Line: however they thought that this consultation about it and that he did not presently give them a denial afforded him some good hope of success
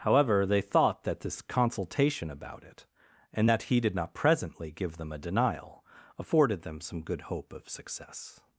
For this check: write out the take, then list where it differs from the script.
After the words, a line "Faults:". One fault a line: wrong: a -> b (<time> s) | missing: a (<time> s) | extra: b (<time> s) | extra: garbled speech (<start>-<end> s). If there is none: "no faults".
however they thought that this consultation about it and that he did not presently give them a denial afforded them some good hope of success
Faults:
wrong: him -> them (6.6 s)